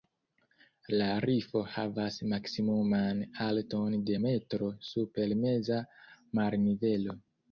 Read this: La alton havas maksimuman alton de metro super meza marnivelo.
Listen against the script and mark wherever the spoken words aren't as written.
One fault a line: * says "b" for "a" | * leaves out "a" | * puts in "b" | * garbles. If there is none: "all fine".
* says "rifo" for "alton"